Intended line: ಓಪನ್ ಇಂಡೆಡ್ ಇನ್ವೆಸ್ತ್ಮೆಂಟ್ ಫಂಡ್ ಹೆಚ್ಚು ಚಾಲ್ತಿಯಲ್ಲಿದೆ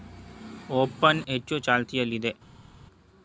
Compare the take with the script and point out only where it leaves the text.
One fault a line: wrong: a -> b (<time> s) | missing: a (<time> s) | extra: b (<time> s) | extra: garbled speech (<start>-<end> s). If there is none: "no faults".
missing: ಇಂಡೆಡ್ ಇನ್ವೆಸ್ತ್ಮೆಂಟ್ ಫಂಡ್ (1.2 s)